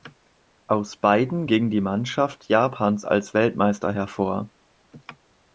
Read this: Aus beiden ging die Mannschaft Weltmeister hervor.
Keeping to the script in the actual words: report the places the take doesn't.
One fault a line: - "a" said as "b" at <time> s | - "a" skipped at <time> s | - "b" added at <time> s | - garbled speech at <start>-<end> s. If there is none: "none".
- "Japans als" added at 2.5 s